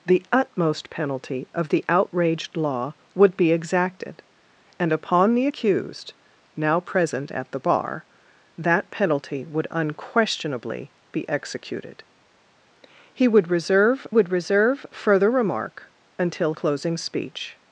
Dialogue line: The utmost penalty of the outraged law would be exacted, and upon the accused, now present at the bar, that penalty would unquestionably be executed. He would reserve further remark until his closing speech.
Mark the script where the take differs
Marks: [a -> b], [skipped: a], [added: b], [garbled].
The utmost penalty of the outraged law would be exacted, and upon the accused, now present at the bar, that penalty would unquestionably be executed. He would reserve [added: would reserve] further remark until [skipped: his] closing speech.